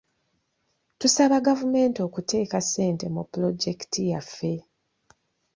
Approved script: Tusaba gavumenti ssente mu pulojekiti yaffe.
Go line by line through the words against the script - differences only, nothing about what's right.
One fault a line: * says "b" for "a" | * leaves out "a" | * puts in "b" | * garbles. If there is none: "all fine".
* puts in "okuteeka"